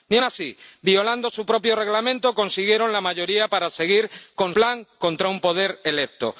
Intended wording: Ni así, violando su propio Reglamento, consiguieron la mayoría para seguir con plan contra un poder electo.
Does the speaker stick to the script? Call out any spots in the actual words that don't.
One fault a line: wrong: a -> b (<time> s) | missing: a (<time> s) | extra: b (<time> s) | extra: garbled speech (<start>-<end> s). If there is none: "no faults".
no faults